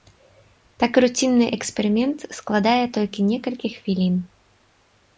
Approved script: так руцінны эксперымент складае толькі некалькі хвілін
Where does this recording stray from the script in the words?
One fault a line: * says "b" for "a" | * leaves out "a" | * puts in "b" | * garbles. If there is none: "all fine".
all fine